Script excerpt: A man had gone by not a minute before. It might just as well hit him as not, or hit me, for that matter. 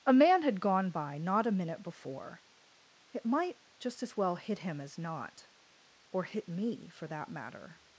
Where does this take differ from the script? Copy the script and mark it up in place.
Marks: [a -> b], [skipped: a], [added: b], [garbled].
A man had gone by not a minute before. It might just as well hit him as not, or hit me, for that matter.